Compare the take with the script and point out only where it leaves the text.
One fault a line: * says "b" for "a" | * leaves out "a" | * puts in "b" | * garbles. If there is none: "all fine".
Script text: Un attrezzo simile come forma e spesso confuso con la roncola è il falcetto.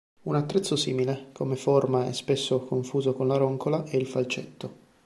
all fine